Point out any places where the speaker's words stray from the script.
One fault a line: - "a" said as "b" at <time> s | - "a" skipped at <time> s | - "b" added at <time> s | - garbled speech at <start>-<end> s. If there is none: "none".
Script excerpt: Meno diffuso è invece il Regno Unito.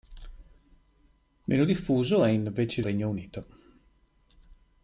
none